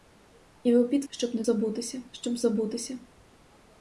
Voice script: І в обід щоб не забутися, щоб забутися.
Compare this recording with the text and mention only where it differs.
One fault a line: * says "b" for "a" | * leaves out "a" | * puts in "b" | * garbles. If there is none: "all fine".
all fine